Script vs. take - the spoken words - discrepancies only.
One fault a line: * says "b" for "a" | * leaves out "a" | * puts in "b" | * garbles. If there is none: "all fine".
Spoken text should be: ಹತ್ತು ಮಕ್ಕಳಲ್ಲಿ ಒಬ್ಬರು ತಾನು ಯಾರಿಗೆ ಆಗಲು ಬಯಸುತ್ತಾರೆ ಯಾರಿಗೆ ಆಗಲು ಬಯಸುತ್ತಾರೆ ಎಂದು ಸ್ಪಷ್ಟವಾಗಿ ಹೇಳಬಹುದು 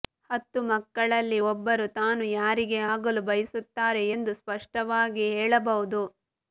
* leaves out "ಯಾರಿಗೆ ಆಗಲು ಬಯಸುತ್ತಾರೆ"